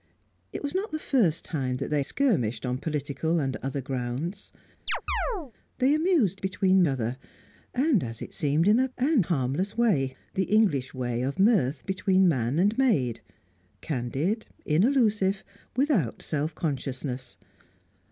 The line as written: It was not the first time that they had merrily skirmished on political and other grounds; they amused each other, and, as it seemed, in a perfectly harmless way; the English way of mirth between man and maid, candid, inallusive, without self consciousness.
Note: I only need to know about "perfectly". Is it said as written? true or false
false